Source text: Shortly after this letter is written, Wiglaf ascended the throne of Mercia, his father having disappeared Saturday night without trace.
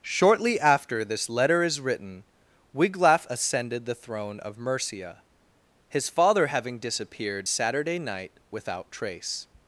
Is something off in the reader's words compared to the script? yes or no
no